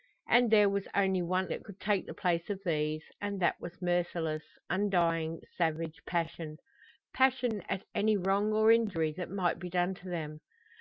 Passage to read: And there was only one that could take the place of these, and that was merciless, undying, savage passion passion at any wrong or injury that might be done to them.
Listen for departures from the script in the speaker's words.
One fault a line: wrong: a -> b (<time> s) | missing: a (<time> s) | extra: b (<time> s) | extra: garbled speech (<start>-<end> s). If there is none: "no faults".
no faults